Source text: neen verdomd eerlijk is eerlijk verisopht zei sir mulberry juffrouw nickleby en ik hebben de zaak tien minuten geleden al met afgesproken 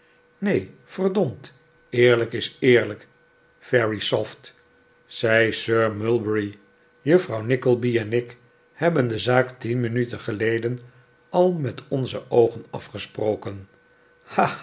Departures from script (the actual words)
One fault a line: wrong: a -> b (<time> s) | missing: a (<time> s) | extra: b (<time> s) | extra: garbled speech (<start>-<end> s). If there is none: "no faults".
extra: onze oogen (11.9 s)